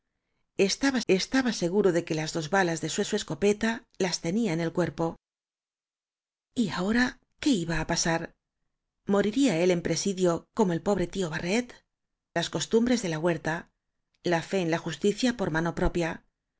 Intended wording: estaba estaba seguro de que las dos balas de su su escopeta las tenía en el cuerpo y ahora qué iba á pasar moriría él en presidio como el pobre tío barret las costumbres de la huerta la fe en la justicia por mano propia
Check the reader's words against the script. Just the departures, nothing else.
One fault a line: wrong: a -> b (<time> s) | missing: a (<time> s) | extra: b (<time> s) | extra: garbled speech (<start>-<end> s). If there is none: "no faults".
no faults